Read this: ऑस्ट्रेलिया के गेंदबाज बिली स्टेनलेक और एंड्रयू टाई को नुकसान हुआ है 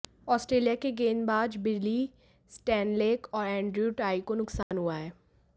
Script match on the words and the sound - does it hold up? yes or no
no